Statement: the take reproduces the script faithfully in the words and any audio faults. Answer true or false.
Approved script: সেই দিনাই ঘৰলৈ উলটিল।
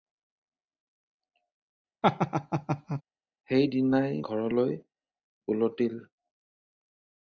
false